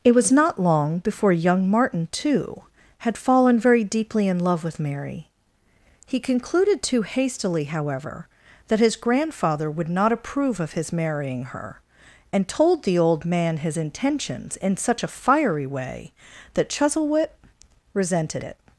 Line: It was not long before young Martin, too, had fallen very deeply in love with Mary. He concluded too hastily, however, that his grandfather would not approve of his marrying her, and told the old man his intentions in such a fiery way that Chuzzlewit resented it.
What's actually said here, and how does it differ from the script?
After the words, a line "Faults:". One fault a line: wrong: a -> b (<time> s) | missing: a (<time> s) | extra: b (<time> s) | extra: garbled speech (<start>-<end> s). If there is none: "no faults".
It was not long before young Martin, too, had fallen very deeply in love with Mary. He concluded too hastily, however, that his grandfather would not approve of his marrying her, and told the old man his intentions in such a fiery way that Chuzzlewit resented it.
Faults:
no faults